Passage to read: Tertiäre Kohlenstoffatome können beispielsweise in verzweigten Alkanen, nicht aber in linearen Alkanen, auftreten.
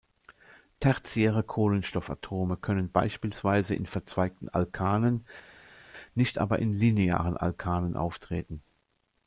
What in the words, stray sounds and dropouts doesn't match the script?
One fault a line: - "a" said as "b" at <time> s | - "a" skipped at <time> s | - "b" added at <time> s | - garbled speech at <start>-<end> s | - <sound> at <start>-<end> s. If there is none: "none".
none